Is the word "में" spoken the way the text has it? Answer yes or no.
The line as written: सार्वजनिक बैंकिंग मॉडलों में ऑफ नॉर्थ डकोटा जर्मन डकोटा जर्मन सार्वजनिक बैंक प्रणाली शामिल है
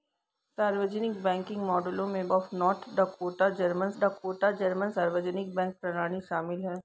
yes